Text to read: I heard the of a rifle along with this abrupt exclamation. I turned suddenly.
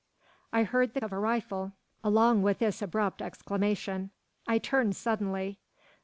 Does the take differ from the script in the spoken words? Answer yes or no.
no